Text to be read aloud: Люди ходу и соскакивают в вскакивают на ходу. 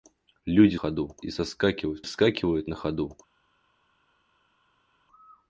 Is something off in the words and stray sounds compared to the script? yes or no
no